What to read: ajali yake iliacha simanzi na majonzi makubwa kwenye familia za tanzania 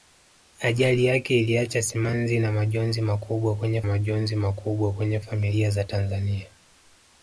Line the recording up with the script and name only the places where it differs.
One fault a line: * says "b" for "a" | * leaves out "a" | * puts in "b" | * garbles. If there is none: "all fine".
* puts in "majonzi makubwa kwenye"